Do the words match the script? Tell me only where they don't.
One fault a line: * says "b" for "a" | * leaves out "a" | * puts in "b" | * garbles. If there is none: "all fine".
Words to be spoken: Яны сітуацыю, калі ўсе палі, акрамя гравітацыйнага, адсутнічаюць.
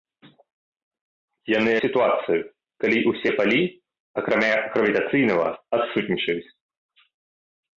all fine